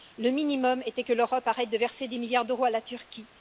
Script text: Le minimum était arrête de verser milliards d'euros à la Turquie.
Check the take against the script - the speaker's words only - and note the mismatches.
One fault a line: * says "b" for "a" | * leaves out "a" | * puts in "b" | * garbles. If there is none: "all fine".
* puts in "que l'Europe"
* puts in "des"